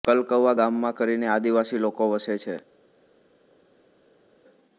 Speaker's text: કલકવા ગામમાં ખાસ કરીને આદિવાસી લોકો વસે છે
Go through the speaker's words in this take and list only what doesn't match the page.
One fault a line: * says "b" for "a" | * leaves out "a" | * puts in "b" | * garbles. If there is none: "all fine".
* leaves out "ખાસ"